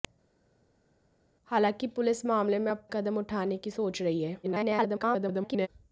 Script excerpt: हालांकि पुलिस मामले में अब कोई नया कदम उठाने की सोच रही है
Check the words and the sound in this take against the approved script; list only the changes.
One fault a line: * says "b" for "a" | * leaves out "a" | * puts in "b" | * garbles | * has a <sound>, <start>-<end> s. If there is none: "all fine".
* leaves out "कोई नया"
* garbles